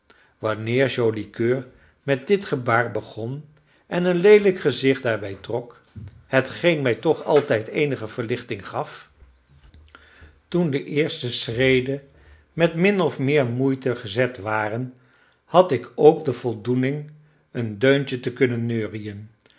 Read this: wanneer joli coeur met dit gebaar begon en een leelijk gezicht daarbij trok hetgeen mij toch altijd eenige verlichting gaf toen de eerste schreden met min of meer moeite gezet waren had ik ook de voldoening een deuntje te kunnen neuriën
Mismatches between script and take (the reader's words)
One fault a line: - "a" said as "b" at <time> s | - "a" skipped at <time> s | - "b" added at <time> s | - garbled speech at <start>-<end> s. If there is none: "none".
none